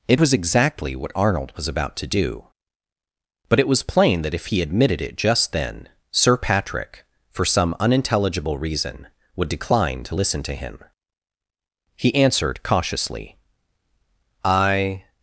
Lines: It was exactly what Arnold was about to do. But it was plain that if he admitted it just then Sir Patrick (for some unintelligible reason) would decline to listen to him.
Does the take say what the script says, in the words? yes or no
no